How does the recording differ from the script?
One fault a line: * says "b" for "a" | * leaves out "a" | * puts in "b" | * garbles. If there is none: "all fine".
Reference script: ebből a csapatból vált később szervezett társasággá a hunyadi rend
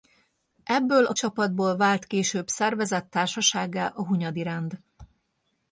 all fine